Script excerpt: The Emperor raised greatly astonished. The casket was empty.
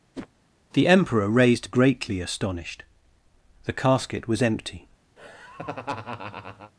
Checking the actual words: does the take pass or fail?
pass